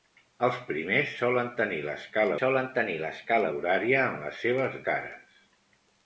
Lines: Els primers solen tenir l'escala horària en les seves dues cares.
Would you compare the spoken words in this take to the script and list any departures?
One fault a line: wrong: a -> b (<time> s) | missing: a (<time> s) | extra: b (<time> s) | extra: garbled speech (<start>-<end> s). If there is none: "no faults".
extra: solen tenir l'escala (2.4 s)
missing: dues (4.8 s)